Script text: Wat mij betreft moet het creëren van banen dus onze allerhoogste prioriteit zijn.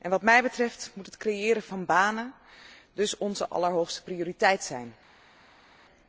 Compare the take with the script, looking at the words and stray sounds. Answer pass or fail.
pass